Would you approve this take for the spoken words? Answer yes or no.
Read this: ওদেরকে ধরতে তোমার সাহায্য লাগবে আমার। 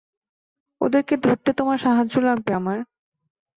yes